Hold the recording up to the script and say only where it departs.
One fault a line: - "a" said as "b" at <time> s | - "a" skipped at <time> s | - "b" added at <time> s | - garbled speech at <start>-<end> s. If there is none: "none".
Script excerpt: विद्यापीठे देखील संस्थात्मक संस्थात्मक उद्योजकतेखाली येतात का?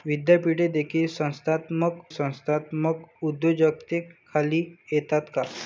none